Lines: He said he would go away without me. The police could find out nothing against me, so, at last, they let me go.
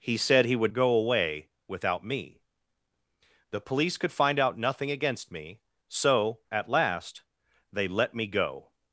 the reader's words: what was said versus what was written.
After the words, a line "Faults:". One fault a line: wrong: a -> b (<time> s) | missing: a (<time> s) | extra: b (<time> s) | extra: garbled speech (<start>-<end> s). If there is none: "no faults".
He said he would go away without me. The police could find out nothing against me, so, at last, they let me go.
Faults:
no faults